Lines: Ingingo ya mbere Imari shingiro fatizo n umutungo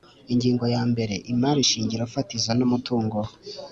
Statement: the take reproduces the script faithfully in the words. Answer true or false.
true